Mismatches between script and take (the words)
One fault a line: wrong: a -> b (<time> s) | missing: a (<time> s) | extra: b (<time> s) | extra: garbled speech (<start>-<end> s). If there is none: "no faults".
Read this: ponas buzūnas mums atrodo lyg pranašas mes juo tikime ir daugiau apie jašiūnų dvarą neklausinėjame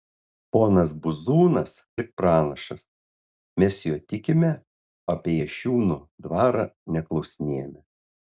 missing: mums atrodo (1.7 s)
missing: ir daugiau (4.5 s)